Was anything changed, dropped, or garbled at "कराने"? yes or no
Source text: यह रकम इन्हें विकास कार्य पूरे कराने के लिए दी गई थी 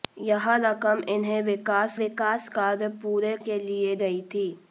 yes